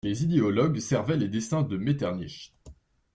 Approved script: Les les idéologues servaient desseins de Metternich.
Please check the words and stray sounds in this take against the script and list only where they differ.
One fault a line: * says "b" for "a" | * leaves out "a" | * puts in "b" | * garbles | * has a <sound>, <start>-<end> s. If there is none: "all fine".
* leaves out "les"
* puts in "les"